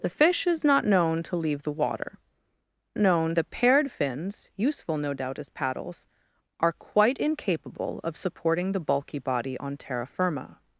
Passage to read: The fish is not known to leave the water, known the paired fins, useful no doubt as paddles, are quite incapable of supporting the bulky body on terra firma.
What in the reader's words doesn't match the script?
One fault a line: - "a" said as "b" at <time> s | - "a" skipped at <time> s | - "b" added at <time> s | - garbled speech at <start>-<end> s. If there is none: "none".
none